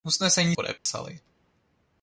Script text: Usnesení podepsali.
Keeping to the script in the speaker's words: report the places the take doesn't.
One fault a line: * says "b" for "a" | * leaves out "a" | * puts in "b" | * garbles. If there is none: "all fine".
all fine